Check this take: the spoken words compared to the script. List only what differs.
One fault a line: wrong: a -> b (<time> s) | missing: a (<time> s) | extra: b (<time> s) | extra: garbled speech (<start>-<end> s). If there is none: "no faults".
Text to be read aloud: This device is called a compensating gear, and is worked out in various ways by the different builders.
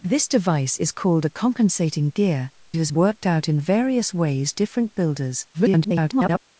missing: and (2.5 s)
missing: by the (4.5 s)
extra: garbled speech (5.5-6.4 s)